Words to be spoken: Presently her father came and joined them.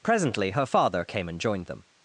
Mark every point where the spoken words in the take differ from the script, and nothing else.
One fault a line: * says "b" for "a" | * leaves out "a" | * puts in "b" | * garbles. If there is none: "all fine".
all fine